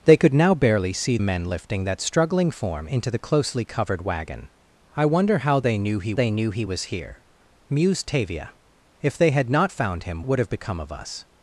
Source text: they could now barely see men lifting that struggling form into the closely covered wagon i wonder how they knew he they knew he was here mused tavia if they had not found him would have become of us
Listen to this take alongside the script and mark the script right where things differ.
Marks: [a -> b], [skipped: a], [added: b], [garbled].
they could now barely see men lifting that struggling form into the closely covered wagon i wonder how they knew he they knew he was here mused tavia if they had not found him would have become of us